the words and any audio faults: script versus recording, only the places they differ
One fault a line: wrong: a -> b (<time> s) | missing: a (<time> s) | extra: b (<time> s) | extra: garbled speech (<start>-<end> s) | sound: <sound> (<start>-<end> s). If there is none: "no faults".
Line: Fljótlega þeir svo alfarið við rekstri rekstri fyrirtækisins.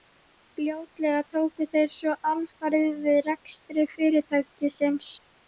extra: tóku (1.3 s)
missing: rekstri (3.9 s)